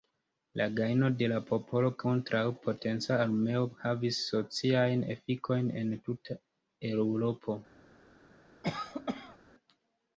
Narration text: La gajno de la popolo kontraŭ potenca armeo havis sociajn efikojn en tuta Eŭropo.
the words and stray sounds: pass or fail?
fail